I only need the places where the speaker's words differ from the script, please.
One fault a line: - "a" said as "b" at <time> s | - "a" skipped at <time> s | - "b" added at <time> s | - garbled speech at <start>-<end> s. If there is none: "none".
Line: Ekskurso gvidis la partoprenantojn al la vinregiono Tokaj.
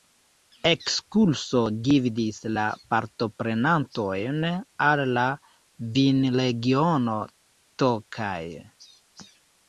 none